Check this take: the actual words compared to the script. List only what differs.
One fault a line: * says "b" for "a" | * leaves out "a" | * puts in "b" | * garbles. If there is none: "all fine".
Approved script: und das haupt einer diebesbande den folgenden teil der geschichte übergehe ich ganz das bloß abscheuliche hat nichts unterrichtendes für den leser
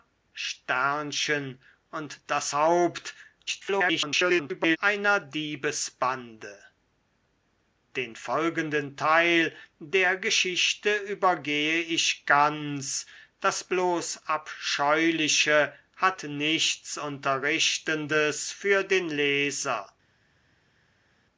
* garbles